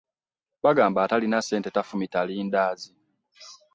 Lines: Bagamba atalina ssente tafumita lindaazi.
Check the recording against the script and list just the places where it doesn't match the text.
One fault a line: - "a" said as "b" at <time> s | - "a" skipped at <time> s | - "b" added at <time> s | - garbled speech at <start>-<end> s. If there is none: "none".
none